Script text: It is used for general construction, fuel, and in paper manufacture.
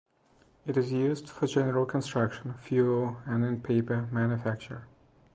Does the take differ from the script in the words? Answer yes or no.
no